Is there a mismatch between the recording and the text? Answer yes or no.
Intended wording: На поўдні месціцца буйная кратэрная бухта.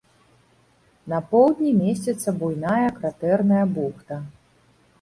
no